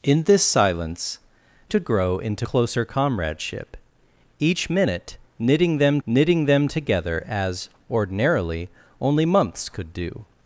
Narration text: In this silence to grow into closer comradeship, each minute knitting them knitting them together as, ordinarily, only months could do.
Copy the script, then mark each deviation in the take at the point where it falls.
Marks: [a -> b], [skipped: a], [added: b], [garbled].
In this silence to grow into closer comradeship, each minute knitting them knitting them together as, ordinarily, only months could do.